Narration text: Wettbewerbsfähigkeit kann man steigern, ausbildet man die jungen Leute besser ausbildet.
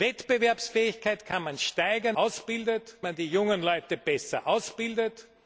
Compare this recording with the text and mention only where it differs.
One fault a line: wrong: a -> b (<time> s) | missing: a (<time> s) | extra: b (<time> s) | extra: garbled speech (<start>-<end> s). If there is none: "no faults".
no faults